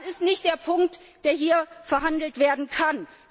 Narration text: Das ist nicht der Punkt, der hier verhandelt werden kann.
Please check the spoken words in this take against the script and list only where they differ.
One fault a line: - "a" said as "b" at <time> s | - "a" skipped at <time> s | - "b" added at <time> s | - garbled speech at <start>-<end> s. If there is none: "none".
none